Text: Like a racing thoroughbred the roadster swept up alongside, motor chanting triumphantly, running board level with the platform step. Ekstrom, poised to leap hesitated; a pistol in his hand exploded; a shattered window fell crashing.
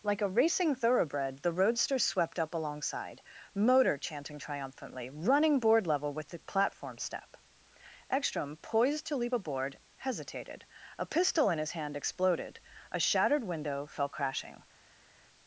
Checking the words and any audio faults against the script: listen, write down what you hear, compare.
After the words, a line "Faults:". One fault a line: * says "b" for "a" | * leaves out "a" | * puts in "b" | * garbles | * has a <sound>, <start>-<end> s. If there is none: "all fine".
Like a racing thoroughbred the roadster swept up alongside, motor chanting triumphantly, running board level with the platform step. Ekstrom, poised to leap aboard, hesitated; a pistol in his hand exploded; a shattered window fell crashing.
Faults:
* puts in "aboard"